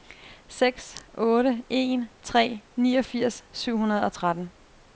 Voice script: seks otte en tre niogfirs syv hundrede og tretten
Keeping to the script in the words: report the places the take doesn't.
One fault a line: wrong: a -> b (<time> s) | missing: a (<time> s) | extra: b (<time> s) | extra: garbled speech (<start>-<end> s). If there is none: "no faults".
no faults